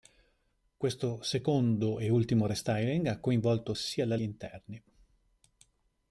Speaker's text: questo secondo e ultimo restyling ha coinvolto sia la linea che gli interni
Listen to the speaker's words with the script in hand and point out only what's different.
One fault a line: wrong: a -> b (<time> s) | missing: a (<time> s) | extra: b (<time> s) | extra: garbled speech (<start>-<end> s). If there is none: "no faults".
missing: linea che (4.2 s)